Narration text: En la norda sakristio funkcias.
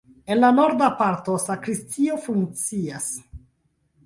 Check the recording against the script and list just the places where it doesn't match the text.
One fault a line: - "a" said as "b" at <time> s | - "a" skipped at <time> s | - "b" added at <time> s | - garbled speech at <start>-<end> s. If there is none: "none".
- "parto" added at 1.0 s